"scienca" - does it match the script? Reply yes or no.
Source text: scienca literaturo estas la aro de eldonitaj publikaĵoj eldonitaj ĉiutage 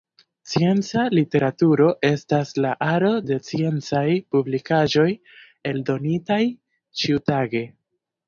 yes